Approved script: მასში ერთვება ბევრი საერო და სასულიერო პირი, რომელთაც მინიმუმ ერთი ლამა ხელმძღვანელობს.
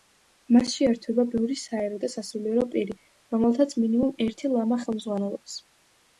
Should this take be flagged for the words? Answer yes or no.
no